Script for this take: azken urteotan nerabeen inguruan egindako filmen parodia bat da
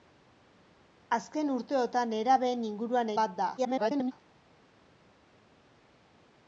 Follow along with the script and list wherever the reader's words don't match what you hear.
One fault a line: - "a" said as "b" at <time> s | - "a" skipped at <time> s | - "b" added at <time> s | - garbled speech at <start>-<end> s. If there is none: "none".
- "egindako filmen parodia" skipped at 3.1 s
- garbled speech at 3.6-4.1 s